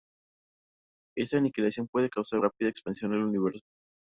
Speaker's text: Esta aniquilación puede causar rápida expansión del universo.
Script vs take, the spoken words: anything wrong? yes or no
no